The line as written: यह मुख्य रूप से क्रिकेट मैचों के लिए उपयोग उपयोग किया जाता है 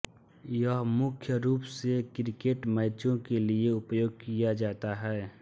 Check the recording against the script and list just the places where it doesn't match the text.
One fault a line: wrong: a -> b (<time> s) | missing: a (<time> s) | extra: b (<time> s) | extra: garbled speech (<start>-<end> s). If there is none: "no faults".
missing: उपयोग (4.2 s)